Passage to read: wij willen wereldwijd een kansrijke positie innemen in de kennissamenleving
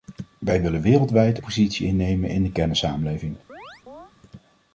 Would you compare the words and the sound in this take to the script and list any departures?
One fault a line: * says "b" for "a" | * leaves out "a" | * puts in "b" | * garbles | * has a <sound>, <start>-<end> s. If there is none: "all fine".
* leaves out "een kansrijke"
* has a chirp, 3.5-4.1 s